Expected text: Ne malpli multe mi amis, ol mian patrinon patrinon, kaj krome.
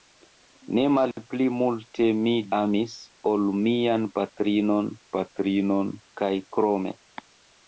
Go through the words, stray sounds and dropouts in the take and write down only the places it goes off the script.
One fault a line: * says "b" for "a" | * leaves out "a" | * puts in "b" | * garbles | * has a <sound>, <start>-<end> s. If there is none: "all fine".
all fine